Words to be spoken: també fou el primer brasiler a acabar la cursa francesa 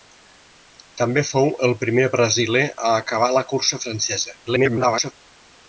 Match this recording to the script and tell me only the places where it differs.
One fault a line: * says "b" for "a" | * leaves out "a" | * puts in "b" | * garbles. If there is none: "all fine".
* garbles